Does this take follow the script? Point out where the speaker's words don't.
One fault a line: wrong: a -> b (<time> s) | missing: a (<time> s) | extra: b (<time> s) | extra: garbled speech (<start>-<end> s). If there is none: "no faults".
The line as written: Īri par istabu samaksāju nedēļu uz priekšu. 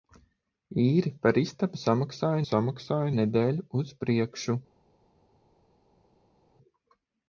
extra: samaksāju (2.5 s)